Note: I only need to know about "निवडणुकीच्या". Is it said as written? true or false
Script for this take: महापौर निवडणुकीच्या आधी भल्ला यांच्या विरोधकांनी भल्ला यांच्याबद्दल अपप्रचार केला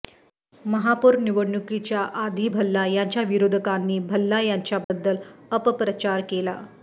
true